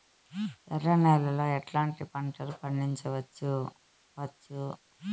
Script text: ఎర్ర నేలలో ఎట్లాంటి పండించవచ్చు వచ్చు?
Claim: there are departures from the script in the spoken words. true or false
true